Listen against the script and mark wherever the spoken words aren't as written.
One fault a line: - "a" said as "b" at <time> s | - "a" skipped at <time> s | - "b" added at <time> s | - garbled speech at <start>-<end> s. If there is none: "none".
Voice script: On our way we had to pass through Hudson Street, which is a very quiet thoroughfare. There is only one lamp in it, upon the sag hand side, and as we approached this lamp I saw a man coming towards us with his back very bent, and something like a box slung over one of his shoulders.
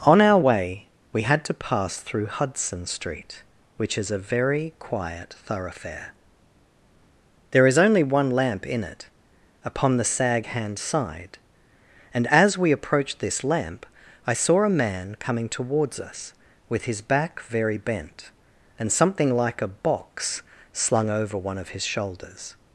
none